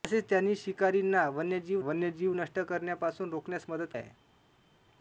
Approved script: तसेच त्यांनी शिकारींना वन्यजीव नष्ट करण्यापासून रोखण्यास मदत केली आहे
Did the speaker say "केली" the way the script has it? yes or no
no